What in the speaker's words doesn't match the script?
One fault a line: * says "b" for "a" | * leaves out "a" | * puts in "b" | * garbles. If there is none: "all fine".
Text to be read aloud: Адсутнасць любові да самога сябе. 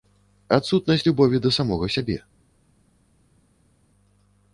all fine